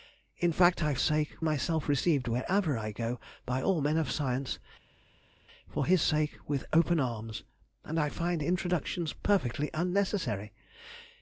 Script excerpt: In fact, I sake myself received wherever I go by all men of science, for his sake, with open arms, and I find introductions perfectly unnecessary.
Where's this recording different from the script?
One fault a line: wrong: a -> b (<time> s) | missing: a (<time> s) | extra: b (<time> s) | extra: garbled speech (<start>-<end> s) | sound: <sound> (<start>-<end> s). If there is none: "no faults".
no faults